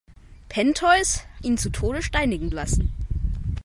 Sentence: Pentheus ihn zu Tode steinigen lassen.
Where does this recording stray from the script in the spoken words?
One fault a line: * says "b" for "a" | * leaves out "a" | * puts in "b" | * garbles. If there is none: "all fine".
all fine